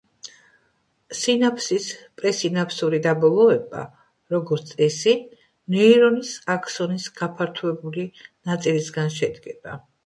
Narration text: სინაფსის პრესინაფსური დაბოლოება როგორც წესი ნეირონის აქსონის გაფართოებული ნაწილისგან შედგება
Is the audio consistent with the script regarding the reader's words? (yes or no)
yes